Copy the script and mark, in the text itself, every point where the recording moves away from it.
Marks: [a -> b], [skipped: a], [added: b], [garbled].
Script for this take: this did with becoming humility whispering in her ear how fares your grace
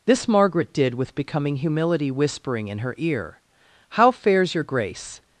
this [added: margaret] did with becoming humility whispering in her ear how fares your grace